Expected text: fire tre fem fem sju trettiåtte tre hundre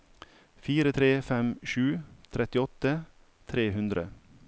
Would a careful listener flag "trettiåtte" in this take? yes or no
no